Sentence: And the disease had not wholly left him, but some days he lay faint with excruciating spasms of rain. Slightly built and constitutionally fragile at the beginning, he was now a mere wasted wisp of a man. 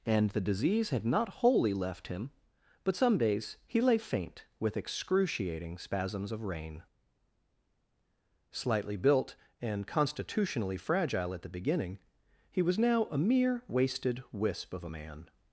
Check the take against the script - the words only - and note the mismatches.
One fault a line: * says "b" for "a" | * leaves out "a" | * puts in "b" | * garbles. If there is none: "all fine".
all fine